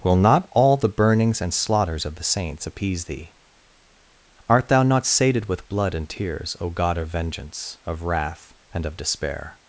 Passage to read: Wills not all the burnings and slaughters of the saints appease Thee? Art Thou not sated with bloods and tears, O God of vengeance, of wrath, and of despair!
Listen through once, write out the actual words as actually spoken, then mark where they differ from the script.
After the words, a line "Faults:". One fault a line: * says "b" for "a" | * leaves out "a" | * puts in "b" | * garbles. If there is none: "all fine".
Will not all the burnings and slaughters of the saints appease Thee? Art Thou not sated with blood and tears, O God of vengeance, of wrath, and of despair!
Faults:
* says "Will" for "Wills"
* says "blood" for "bloods"